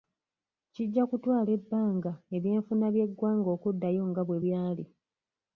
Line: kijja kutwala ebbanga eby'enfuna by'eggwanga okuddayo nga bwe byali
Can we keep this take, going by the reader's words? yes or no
yes